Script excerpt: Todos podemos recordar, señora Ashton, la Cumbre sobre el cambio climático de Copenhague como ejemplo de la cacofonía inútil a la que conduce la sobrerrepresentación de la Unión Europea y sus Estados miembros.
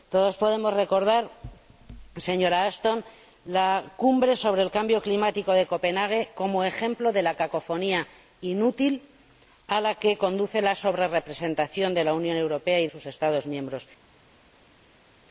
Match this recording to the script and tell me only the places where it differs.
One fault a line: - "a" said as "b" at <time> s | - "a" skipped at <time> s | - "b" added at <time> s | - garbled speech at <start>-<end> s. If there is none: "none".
none